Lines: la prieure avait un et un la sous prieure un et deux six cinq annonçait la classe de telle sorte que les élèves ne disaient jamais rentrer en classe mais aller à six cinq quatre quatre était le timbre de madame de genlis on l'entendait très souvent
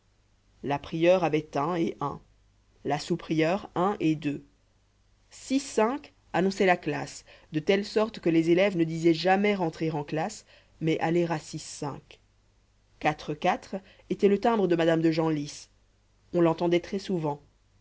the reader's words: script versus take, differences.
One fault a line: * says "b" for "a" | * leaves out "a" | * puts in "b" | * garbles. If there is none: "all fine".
all fine